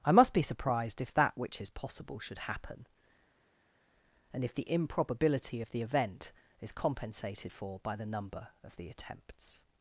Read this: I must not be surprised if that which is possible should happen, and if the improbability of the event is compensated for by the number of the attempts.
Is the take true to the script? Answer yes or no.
no